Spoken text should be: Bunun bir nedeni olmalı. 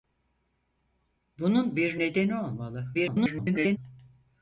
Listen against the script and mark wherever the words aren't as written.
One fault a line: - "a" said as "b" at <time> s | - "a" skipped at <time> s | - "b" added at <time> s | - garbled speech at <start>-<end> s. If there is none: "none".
- garbled speech at 2.9-3.8 s